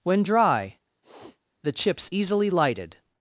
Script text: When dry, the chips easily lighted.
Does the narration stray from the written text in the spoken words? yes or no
no